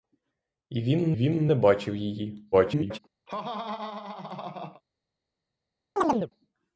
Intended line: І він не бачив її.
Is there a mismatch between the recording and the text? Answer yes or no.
yes